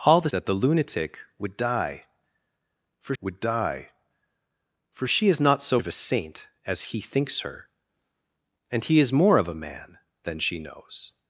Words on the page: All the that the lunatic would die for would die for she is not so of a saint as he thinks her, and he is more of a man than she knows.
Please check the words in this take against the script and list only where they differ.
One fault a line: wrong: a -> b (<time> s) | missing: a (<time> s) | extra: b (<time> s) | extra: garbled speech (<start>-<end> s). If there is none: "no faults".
no faults